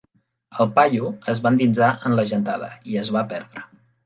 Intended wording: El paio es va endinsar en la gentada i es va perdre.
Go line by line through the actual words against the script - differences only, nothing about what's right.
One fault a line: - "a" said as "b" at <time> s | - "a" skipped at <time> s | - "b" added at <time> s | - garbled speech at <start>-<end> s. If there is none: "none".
none